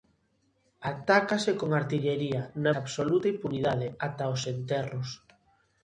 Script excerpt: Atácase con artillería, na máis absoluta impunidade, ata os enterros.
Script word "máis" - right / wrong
wrong